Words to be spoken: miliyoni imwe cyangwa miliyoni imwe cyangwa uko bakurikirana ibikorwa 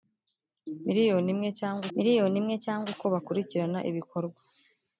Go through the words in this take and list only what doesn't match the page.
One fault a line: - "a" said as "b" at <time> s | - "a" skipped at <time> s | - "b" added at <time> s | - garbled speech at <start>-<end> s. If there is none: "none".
none